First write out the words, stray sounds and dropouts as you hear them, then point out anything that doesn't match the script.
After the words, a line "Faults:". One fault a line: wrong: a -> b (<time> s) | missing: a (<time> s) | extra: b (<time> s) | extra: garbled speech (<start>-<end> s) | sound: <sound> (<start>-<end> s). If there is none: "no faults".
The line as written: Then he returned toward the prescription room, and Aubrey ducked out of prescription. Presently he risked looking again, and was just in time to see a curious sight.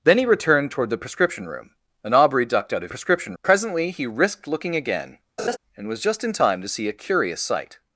Then he returned toward the prescription room, and Aubrey ducked out of prescription. Presently he risked looking again, and was just in time to see a curious sight.
Faults:
sound: laugh (5.4-5.6 s)